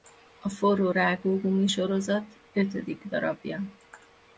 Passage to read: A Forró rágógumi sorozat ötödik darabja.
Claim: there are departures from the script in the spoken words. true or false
false